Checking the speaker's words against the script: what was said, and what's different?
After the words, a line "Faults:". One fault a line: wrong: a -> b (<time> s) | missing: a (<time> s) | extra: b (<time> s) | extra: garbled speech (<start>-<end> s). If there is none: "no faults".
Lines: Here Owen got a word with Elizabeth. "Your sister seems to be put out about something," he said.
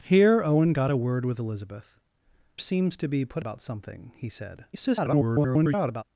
Here Owen got a word with Elizabeth. "Seems to be put about something," he said. [garbled]
Faults:
missing: Your sister (2.0 s)
missing: out (3.4 s)
extra: garbled speech (4.7-6.0 s)